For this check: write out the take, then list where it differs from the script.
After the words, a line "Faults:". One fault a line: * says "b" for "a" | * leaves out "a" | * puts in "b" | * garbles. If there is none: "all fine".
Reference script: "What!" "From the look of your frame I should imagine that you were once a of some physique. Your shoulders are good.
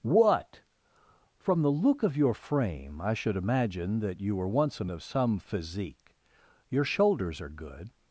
"What!" "From the look of your frame I should imagine that you were once a of some physique. Your shoulders are good.
Faults:
all fine